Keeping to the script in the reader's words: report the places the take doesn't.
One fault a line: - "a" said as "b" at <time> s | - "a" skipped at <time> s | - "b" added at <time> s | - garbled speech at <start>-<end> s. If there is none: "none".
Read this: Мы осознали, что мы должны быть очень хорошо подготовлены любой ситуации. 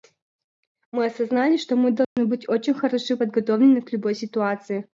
- "к" added at 3.8 s